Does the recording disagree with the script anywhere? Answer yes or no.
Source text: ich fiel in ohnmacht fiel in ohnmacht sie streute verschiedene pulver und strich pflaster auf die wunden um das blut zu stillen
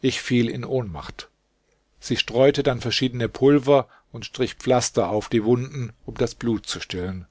yes